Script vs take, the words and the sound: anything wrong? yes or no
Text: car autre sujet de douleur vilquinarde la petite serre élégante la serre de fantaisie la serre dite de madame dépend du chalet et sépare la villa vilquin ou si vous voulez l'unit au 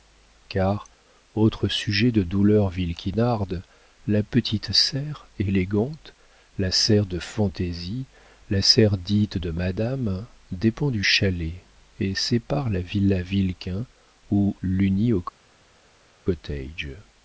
yes